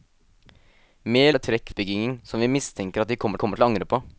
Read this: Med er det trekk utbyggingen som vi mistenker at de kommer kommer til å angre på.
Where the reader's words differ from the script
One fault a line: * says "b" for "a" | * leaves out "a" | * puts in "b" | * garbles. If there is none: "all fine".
all fine